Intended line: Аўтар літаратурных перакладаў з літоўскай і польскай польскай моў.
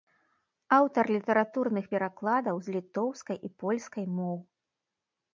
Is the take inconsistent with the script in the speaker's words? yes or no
yes